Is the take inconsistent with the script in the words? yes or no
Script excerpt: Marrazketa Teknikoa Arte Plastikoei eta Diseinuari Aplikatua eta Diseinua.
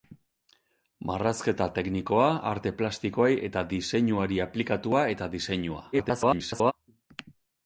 yes